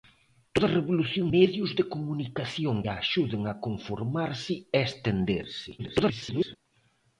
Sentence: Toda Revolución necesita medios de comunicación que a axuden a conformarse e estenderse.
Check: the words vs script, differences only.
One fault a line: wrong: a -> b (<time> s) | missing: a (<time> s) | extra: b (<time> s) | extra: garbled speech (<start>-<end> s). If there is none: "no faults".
missing: necesita (1.3 s)
missing: que (2.8 s)
extra: garbled speech (5.8-6.6 s)